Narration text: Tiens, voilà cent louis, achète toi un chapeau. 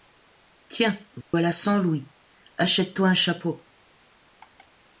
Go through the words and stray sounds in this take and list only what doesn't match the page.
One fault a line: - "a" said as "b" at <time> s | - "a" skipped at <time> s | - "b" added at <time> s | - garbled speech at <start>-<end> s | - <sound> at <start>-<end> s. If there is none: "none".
- dropout at 1.2-1.3 s